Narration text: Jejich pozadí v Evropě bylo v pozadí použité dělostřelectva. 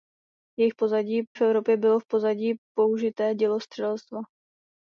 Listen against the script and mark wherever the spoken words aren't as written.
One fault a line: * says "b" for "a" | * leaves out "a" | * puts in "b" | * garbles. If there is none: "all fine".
all fine